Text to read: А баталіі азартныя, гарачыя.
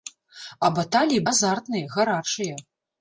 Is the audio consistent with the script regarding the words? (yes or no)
yes